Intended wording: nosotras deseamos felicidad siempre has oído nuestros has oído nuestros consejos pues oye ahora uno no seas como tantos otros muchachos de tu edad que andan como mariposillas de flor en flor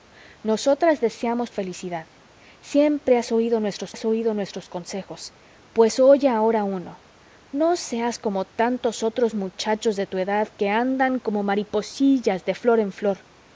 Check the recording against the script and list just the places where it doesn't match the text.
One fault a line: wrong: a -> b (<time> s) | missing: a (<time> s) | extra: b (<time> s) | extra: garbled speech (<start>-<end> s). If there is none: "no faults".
no faults